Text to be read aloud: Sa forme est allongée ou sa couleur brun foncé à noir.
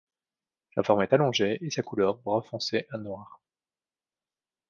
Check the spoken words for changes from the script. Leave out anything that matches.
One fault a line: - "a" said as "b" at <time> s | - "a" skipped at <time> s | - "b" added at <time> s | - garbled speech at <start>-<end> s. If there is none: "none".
- "ou" said as "et" at 1.6 s